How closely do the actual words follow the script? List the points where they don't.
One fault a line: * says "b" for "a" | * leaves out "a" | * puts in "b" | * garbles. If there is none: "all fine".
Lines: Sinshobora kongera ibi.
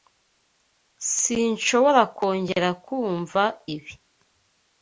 * puts in "kumva"